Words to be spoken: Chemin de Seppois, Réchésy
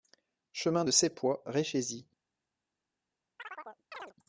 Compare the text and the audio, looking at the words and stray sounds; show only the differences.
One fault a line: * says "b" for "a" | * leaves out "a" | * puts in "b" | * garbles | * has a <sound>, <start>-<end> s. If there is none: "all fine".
* has a chirp, 3.4-4.1 s